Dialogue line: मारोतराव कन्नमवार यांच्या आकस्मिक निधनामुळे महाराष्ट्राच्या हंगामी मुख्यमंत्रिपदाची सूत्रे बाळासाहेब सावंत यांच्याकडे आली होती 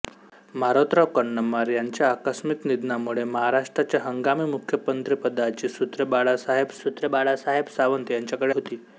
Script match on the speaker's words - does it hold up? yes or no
no